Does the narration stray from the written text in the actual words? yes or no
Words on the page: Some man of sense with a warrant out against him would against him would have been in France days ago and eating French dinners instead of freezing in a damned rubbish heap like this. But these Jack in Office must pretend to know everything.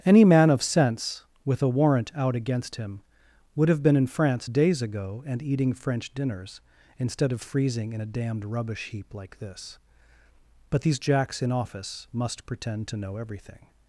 yes